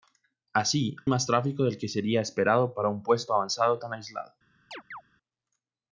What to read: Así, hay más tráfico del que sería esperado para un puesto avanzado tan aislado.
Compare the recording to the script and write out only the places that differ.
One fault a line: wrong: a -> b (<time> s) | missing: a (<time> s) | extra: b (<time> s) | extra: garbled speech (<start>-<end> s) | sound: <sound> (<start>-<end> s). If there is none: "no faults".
missing: hay (0.9 s)
sound: chirp (4.7-5.0 s)